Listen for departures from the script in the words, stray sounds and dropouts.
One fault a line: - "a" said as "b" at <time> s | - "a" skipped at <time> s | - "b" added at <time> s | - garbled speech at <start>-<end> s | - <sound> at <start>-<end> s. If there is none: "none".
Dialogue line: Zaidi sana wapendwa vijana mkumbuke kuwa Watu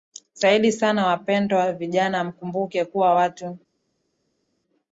none